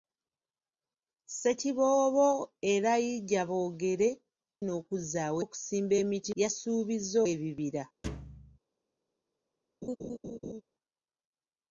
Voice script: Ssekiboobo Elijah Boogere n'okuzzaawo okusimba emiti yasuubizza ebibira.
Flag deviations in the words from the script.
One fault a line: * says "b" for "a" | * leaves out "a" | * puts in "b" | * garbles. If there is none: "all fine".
all fine